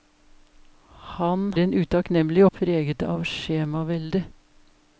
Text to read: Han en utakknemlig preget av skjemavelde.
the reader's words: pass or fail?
pass